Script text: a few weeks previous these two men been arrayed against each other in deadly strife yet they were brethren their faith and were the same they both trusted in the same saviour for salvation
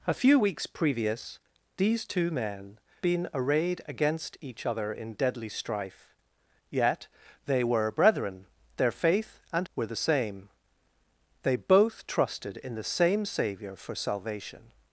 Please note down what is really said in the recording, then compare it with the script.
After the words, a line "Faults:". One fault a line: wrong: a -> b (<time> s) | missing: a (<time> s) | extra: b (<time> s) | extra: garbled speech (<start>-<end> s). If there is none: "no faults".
a few weeks previous these two men been arrayed against each other in deadly strife yet they were brethren their faith and were the same they both trusted in the same saviour for salvation
Faults:
no faults